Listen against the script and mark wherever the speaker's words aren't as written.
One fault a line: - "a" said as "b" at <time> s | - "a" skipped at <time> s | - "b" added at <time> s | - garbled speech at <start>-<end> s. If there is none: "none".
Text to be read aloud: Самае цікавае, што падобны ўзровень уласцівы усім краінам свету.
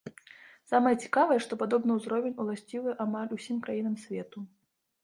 - "амаль" added at 3.1 s